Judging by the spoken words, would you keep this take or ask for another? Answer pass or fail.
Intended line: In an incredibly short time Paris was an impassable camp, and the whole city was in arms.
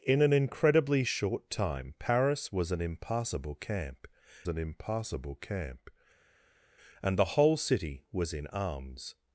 fail